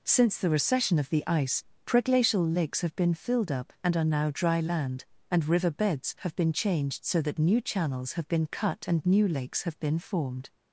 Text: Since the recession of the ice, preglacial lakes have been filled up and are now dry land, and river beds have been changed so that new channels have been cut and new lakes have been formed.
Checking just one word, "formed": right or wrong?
right